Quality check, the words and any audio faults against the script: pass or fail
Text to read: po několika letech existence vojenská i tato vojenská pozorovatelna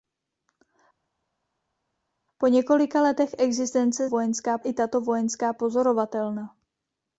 pass